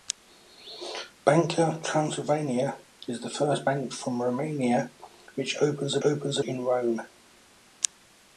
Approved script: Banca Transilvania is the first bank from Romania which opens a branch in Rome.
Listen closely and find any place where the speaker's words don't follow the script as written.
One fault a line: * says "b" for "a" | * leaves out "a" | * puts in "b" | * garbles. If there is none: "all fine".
* says "opens" for "branch"